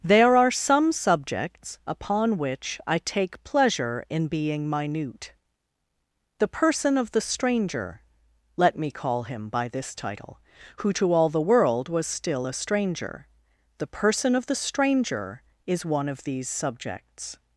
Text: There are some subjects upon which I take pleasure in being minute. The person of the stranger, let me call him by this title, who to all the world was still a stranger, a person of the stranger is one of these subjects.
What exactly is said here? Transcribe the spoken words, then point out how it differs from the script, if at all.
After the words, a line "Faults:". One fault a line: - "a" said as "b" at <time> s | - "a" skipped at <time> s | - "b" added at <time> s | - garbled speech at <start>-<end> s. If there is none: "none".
There are some subjects upon which I take pleasure in being minute. The person of the stranger, let me call him by this title, who to all the world was still a stranger, the person of the stranger is one of these subjects.
Faults:
- "a" said as "the" at 13.8 s